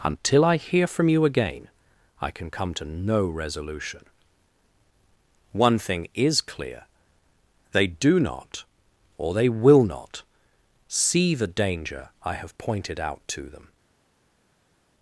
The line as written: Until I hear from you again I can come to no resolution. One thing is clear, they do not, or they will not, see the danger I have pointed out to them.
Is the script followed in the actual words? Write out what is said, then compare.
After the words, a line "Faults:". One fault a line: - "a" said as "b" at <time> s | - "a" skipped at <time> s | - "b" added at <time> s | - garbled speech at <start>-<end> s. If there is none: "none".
Until I hear from you again I can come to no resolution. One thing is clear, they do not, or they will not, see the danger I have pointed out to them.
Faults:
none